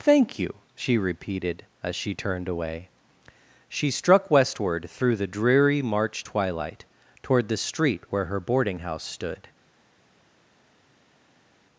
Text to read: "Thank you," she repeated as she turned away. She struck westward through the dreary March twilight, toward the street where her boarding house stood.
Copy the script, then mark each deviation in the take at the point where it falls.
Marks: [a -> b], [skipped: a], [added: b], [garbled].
"Thank you," she repeated as she turned away. She struck westward through the dreary March twilight, toward the street where her boarding house stood.